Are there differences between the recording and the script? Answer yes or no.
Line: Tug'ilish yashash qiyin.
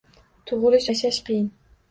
no